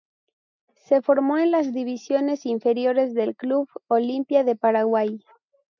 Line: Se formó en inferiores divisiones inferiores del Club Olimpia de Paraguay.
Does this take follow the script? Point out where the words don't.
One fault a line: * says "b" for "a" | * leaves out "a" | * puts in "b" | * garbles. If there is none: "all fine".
* says "las" for "inferiores"